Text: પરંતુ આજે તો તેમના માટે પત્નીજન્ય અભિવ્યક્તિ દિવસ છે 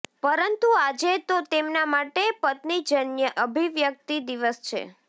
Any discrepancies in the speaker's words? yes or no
no